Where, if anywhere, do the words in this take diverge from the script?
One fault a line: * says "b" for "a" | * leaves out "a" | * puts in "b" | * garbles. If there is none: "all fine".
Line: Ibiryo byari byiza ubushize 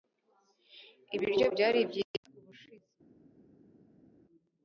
all fine